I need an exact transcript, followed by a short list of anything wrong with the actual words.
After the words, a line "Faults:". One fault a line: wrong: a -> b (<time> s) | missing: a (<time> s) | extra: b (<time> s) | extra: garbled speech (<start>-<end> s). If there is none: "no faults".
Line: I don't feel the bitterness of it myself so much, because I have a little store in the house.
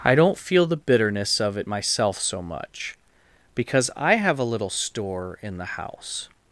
I don't feel the bitterness of it myself so much, because I have a little store in the house.
Faults:
no faults